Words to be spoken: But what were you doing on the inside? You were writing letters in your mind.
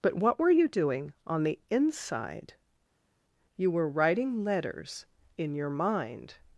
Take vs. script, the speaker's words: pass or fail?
pass